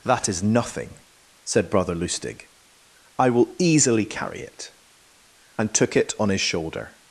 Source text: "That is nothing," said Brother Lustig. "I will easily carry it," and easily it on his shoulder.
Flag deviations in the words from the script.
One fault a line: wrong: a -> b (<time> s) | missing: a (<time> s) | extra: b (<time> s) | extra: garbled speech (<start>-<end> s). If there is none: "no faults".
wrong: easily -> took (5.7 s)